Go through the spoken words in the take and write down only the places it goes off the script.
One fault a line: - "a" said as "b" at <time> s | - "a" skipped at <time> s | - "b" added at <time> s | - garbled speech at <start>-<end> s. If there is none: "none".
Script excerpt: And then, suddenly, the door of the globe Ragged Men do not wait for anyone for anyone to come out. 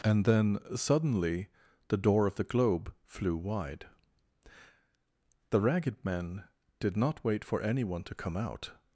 - "flew wide The" added at 3.0 s
- "do" said as "did" at 6.8 s
- "for anyone" skipped at 8.0 s